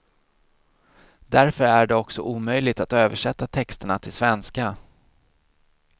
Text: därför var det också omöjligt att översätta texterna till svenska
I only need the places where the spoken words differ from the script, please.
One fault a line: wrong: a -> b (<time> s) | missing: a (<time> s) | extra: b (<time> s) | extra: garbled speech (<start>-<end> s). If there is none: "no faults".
wrong: var -> är (1.6 s)